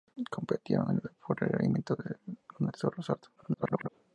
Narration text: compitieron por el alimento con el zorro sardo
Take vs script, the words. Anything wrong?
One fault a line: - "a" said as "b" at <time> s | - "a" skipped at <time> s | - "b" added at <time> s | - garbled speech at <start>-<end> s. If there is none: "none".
- garbled speech at 3.4-3.9 s